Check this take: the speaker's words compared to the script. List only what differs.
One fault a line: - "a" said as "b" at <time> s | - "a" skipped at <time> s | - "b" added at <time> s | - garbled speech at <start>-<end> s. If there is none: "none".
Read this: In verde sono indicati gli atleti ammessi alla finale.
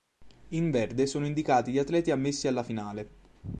none